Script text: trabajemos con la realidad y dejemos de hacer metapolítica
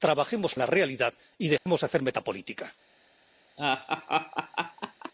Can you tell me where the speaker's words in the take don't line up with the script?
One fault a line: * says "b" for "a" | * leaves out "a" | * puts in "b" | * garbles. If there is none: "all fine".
* leaves out "con"